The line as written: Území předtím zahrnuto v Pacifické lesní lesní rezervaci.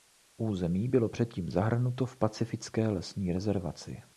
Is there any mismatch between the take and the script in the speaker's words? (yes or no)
yes